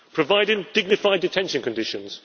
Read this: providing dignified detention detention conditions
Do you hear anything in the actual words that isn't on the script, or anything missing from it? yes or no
yes